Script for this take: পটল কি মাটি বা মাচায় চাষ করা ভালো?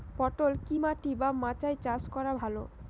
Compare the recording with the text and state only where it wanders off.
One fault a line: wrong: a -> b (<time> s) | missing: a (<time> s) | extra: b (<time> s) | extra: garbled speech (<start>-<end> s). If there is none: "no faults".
no faults